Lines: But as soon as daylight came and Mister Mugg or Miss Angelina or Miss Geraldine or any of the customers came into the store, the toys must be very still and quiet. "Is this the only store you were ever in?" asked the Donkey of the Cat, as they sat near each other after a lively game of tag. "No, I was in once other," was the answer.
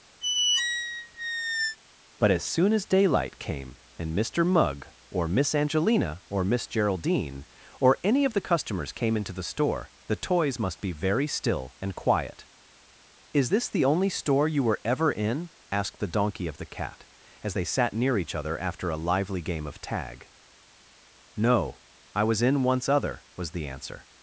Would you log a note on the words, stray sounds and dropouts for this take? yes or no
yes